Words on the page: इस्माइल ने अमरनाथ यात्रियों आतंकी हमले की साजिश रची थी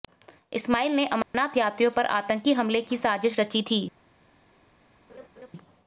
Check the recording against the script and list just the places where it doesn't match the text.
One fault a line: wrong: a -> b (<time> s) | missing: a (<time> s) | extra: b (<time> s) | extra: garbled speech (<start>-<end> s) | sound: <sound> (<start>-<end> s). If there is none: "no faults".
sound: dropout (1.2-1.3 s)
extra: पर (1.9 s)
sound: laugh (5.1-5.5 s)